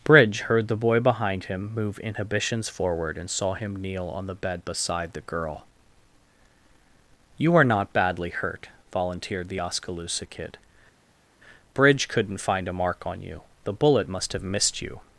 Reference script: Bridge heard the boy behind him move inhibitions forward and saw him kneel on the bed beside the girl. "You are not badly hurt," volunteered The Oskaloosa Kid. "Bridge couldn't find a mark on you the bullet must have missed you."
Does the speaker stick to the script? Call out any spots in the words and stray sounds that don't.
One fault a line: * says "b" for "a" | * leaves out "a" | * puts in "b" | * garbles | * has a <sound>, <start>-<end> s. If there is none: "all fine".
all fine